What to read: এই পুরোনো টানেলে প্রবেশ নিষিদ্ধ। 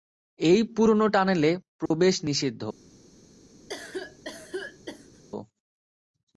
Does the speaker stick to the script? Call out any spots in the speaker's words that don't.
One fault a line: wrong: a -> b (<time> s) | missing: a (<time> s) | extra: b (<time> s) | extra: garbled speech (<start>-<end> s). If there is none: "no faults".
no faults